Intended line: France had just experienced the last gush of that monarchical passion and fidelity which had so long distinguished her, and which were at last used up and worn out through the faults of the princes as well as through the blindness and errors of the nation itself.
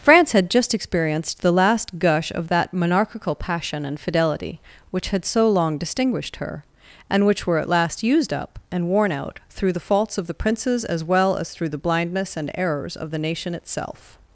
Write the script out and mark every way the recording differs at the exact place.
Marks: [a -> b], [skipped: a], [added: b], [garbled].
France had just experienced the last gush of that monarchical passion and fidelity which had so long distinguished her, and which were at last used up and worn out through the faults of the princes as well as through the blindness and errors of the nation itself.